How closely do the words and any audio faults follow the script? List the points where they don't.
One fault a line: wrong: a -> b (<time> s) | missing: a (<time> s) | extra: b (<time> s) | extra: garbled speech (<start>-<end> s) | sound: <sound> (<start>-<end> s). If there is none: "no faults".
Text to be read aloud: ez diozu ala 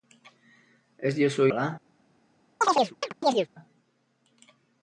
sound: chirp (2.6-3.5 s)